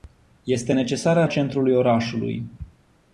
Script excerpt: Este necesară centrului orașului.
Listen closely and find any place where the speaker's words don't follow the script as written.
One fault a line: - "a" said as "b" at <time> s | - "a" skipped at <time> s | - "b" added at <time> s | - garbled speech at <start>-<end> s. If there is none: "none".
none